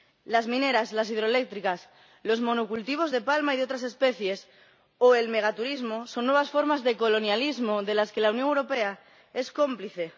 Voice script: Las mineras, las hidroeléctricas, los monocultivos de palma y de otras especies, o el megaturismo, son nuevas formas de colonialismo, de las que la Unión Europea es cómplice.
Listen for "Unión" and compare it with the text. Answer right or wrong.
right